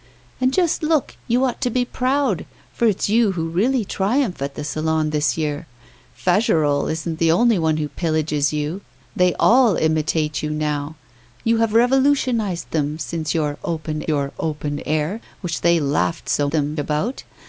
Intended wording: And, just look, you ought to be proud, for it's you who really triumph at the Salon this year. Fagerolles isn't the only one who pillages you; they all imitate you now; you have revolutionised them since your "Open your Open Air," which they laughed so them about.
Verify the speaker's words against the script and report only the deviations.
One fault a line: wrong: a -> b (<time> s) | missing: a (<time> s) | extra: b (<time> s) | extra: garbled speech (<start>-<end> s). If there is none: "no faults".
no faults